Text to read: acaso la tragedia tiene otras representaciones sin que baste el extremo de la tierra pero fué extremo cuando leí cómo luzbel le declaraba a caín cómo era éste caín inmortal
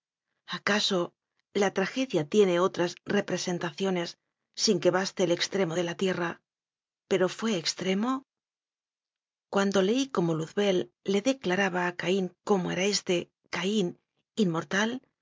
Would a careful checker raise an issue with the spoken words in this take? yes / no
no